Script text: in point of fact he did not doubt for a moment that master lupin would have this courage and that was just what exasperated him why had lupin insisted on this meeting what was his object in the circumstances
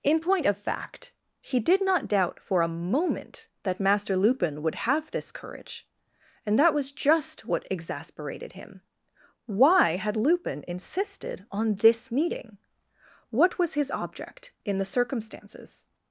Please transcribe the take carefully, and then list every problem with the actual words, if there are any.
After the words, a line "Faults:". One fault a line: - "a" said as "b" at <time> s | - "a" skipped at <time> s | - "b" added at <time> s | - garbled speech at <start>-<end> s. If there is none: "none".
in point of fact he did not doubt for a moment that master lupin would have this courage and that was just what exasperated him why had lupin insisted on this meeting what was his object in the circumstances
Faults:
none